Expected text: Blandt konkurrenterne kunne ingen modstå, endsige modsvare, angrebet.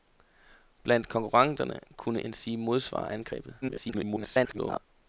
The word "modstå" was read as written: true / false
false